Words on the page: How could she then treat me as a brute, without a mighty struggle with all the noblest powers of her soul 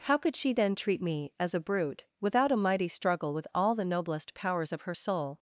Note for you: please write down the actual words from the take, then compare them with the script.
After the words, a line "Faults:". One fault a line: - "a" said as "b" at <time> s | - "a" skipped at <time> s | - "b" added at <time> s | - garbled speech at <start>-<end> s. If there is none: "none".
How could she then treat me as a brute, without a mighty struggle with all the noblest powers of her soul
Faults:
none